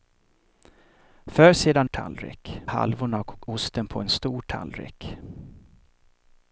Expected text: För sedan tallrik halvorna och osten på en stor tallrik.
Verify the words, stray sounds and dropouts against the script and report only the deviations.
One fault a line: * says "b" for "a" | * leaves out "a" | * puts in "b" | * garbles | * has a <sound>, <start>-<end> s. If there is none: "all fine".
all fine